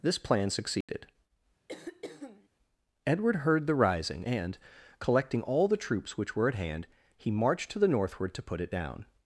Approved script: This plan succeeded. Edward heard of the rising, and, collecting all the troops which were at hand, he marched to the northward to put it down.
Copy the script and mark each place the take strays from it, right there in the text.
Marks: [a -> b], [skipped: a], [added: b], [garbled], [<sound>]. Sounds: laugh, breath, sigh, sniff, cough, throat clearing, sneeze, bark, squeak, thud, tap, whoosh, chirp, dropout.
This plan succeeded. [dropout] [throat clearing] Edward heard [skipped: of] the rising, and, collecting all the troops which were at hand, he marched to the northward to put it down.